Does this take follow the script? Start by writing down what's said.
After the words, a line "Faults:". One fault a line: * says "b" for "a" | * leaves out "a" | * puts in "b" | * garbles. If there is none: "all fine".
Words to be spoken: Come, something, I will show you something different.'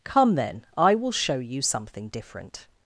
Come, then, I will show you something different.'
Faults:
* says "then" for "something"